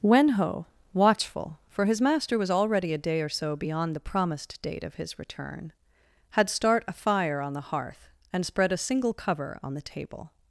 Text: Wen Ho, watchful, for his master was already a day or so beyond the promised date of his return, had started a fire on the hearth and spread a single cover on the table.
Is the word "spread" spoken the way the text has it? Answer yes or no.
yes